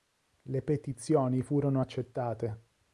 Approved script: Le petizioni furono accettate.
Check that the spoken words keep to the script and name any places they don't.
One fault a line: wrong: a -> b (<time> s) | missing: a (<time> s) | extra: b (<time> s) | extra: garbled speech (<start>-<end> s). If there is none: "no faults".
no faults